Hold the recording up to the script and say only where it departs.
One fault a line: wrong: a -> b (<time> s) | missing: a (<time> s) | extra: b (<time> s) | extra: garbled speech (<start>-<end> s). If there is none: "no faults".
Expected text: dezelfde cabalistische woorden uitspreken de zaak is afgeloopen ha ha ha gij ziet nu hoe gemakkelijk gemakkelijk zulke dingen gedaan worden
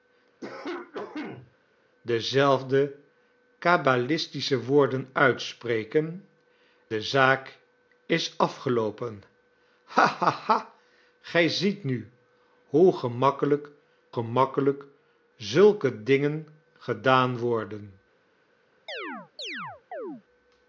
no faults